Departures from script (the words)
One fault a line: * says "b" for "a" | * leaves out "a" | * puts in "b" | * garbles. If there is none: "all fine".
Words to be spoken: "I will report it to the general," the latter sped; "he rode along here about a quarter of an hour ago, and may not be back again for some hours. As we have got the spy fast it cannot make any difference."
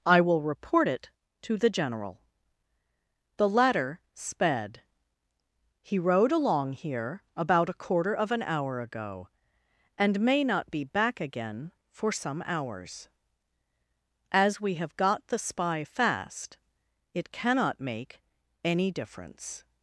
all fine